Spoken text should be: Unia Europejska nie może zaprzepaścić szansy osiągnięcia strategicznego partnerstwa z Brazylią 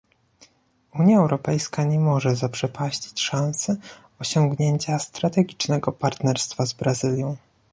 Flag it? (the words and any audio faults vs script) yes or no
no